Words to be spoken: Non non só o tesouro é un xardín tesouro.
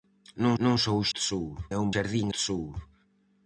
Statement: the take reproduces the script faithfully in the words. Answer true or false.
true